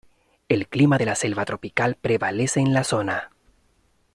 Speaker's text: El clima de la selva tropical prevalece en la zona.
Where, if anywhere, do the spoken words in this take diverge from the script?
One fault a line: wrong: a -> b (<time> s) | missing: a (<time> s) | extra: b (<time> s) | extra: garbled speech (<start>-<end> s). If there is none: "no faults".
no faults